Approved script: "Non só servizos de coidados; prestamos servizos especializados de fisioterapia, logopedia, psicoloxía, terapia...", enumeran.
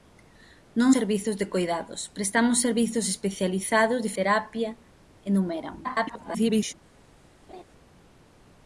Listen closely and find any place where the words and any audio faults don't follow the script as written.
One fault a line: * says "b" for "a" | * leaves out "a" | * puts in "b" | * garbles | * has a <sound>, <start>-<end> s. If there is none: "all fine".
* leaves out "só"
* leaves out "fisioterapia logopedia psicoloxía"
* garbles
* has a laugh, 7.5-7.6 s